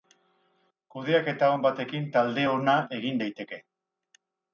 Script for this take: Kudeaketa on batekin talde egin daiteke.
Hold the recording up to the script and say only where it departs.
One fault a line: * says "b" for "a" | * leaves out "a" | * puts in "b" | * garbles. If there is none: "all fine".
* puts in "ona"